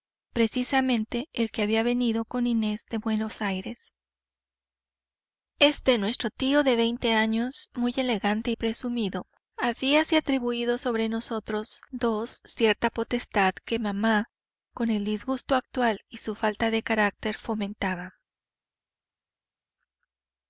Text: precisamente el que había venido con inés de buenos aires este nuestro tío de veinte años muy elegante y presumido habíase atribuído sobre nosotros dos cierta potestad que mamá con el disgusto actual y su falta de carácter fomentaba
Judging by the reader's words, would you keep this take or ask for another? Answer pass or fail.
pass